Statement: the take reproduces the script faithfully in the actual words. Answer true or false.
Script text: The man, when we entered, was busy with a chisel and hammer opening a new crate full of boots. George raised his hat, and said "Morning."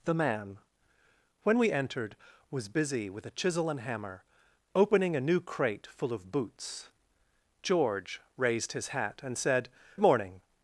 true